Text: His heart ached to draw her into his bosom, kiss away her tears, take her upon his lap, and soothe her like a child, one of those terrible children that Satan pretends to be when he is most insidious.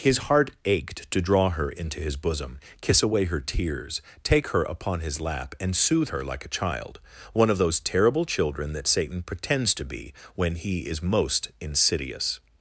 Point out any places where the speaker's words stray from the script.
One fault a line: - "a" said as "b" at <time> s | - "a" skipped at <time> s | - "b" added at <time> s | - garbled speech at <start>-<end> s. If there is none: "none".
none